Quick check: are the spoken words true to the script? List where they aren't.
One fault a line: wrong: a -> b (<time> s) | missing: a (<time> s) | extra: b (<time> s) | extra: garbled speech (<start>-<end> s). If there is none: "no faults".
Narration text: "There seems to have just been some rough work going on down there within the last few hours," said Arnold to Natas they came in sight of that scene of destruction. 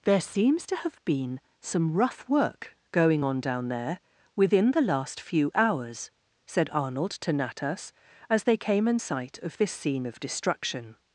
missing: just (1.0 s)
extra: as (8.3 s)
wrong: that -> this (9.6 s)